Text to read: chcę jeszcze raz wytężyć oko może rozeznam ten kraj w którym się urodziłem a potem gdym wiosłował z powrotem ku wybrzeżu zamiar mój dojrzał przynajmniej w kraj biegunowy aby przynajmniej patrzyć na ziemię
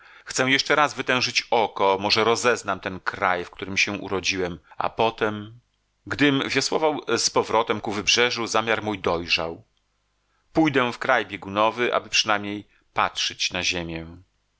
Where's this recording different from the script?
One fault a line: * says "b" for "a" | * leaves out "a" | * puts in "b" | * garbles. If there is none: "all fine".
* says "pójdę" for "przynajmniej"